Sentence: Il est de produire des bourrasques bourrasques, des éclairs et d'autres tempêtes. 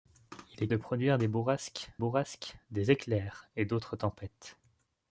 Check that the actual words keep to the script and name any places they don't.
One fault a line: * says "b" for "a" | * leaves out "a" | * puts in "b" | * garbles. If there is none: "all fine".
all fine